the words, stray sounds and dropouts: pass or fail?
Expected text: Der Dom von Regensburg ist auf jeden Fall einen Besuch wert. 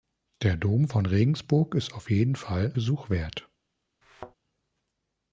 fail